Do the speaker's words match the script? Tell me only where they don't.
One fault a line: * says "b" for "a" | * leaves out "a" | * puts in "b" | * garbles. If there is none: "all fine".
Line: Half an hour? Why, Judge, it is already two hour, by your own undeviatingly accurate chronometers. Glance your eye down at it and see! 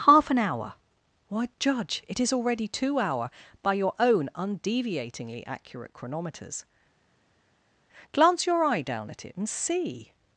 all fine